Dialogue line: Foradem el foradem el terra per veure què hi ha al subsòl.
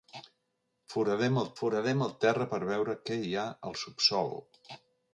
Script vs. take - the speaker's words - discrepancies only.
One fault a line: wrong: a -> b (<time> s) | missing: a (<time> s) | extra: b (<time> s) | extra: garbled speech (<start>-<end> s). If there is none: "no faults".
no faults